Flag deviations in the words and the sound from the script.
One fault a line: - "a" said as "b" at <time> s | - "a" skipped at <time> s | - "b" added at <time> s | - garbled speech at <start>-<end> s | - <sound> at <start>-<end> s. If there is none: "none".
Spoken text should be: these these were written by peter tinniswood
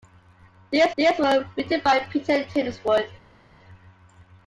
none